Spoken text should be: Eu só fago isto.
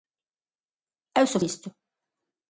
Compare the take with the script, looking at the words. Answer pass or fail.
fail